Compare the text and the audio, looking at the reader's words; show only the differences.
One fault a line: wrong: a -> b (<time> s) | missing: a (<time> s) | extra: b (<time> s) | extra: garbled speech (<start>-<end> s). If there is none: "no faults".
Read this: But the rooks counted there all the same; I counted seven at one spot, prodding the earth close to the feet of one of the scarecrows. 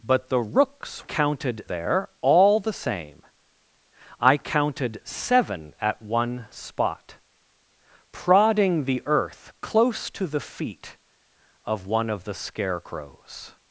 no faults